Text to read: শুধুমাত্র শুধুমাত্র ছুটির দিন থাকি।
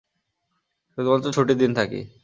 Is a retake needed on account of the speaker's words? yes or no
yes